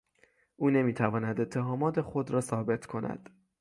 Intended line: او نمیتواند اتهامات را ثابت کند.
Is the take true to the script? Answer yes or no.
no